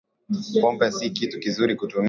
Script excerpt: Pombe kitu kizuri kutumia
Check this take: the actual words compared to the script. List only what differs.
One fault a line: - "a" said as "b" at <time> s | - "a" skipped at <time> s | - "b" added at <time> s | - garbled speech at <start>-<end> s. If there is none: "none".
- "si" added at 0.9 s